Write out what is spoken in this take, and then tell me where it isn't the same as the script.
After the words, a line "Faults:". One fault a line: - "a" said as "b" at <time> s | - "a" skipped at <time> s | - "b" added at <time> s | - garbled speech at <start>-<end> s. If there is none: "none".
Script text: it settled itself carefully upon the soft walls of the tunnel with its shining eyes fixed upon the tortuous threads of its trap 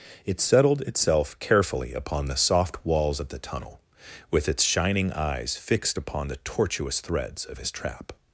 it settled itself carefully upon the soft walls of the tunnel with its shining eyes fixed upon the tortuous threads of his trap
Faults:
- "its" said as "his" at 7.6 s